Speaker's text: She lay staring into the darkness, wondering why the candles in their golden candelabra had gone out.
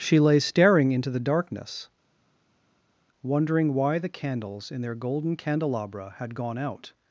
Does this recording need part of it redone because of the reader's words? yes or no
no